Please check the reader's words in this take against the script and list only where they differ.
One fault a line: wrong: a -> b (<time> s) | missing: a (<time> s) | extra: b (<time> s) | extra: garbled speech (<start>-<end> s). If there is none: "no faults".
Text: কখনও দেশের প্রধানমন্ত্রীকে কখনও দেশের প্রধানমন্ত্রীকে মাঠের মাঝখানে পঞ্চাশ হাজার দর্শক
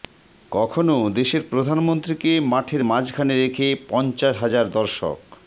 missing: কখনও দেশের প্রধানমন্ত্রীকে (2.3 s)
extra: রেখে (3.3 s)